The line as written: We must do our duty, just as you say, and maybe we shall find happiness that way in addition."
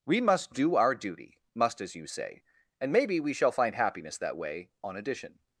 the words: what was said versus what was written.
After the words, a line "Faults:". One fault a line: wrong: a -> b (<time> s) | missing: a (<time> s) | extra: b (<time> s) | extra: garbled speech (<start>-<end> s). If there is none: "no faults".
We must do our duty, must as you say, and maybe we shall find happiness that way on addition."
Faults:
wrong: just -> must (1.5 s)
wrong: in -> on (4.8 s)